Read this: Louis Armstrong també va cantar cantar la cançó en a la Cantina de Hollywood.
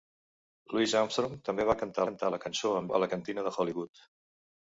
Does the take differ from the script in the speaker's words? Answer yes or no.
no